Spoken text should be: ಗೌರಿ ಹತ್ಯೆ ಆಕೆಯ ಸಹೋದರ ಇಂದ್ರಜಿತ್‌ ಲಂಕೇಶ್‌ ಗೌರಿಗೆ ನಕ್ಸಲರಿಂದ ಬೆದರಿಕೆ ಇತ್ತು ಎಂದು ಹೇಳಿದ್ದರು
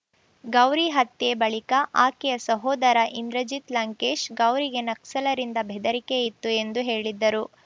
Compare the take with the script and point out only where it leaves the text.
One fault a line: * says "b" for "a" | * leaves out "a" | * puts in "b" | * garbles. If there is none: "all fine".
* puts in "ಬಳಿಕ"